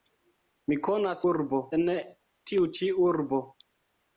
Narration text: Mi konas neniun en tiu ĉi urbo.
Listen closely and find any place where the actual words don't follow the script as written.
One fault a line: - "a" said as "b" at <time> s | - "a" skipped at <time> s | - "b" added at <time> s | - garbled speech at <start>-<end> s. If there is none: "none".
- "neniun" said as "urbo" at 1.3 s